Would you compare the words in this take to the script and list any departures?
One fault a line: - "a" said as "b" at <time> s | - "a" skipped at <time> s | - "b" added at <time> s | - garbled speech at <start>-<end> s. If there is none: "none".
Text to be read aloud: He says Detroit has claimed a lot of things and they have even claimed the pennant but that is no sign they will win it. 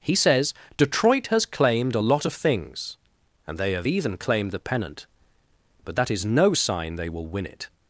none